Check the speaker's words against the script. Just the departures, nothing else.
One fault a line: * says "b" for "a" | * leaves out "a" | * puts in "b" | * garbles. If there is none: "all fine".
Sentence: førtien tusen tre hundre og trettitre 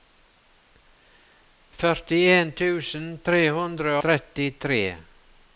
* leaves out "og"